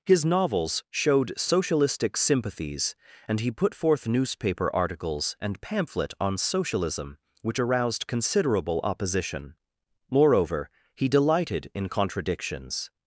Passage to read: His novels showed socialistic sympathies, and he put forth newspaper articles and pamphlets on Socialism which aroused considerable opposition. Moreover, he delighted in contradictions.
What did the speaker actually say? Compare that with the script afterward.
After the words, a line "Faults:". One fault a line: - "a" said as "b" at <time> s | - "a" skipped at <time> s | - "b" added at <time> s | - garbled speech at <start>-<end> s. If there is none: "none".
His novels showed socialistic sympathies, and he put forth newspaper articles and pamphlet on Socialism which aroused considerable opposition. Moreover, he delighted in contradictions.
Faults:
- "pamphlets" said as "pamphlet" at 5.6 s